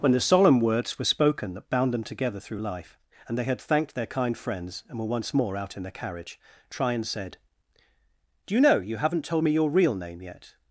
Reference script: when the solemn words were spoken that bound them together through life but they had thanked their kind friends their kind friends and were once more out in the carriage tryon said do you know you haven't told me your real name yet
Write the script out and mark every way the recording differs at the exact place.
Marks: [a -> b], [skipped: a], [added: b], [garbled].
when the solemn words were spoken that bound them together through life [but -> and] they had thanked their kind friends [skipped: their kind friends] and were once more out in the carriage tryon said do you know you haven't told me your real name yet